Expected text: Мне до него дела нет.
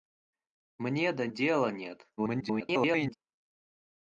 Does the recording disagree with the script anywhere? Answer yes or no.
yes